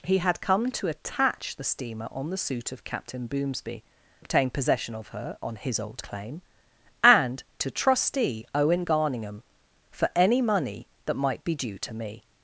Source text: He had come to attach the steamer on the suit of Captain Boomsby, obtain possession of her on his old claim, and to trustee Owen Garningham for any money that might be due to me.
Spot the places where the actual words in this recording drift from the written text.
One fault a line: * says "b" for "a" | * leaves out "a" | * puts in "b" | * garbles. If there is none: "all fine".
all fine